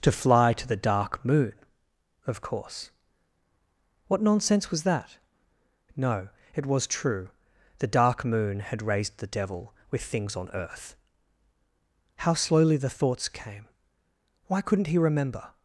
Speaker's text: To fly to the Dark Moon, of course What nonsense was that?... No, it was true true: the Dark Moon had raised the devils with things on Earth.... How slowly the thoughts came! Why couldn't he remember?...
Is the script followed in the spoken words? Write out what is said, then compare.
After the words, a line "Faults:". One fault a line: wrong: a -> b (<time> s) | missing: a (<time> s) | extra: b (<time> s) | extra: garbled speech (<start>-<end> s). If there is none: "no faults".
To fly to the Dark Moon, of course What nonsense was that?... No, it was true: the Dark Moon had raised the devil with things on Earth.... How slowly the thoughts came! Why couldn't he remember?...
Faults:
missing: true (7.3 s)
wrong: devils -> devil (9.3 s)